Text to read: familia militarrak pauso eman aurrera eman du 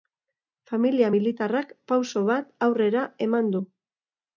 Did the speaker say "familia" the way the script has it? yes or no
yes